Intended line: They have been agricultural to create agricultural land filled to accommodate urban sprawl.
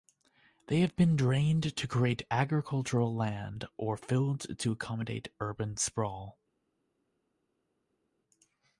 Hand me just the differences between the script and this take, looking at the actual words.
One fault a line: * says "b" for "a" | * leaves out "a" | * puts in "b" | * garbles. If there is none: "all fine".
* says "drained" for "agricultural"
* puts in "or"